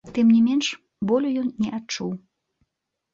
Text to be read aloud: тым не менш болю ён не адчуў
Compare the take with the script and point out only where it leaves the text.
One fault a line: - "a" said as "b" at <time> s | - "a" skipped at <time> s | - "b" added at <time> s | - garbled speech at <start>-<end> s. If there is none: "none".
none